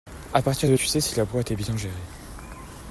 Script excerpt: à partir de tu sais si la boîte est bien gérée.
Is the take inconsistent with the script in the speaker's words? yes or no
no